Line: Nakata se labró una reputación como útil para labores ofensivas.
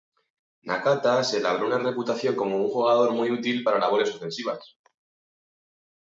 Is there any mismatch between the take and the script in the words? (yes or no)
yes